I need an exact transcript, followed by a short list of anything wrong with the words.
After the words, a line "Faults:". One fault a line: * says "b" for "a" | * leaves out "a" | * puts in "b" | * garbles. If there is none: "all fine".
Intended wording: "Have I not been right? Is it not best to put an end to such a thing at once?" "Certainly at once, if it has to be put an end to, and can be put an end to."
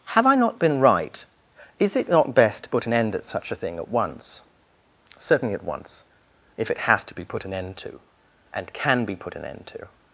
"Have I not been right? Is it not best to put an end at such a thing at once?" "Certainly at once, if it has to be put an end to, and can be put an end to."
Faults:
* says "at" for "to"